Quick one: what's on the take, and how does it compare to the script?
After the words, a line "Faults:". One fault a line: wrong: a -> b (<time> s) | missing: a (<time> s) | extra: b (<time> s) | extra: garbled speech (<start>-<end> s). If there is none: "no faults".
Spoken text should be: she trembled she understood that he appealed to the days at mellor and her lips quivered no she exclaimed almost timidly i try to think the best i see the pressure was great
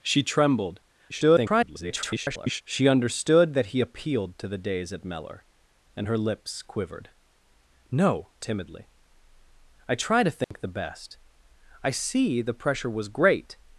she trembled [garbled] she understood that he appealed to the days at mellor and her lips quivered no timidly i try to think the best i see the pressure was great
Faults:
extra: garbled speech (1.1-2.6 s)
missing: she exclaimed almost (8.3 s)